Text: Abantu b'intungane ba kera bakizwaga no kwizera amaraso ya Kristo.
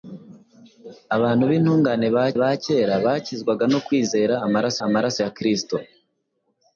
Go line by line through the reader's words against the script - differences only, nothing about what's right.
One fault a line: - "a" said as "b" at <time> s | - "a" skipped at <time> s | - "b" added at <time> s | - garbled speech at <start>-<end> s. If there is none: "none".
- "ba" added at 2.4 s
- "amaraso" added at 4.9 s